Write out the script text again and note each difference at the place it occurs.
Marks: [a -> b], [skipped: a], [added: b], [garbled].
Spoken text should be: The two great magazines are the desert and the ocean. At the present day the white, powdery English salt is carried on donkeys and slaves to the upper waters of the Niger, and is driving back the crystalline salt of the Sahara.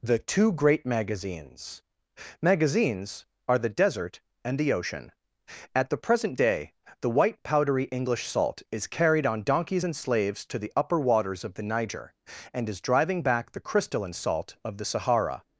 The two great magazines [added: magazines] are the desert and the ocean. At the present day the white, powdery English salt is carried on donkeys and slaves to the upper waters of the Niger, and is driving back the crystalline salt of the Sahara.